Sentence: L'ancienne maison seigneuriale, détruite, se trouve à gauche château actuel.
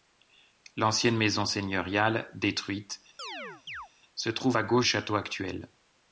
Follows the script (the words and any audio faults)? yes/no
no